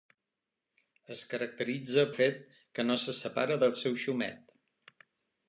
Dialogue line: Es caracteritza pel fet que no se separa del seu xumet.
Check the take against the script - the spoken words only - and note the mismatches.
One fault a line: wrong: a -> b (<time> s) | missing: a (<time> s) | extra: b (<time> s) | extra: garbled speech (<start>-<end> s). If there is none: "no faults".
missing: pel (2.0 s)